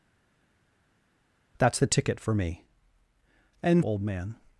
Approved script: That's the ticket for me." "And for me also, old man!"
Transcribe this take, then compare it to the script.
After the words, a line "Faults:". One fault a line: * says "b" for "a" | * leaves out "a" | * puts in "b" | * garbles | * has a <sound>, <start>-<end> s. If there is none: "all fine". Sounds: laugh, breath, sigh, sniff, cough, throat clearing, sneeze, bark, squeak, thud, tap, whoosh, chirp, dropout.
That's the ticket for me." "And old man!"
Faults:
* leaves out "for me also"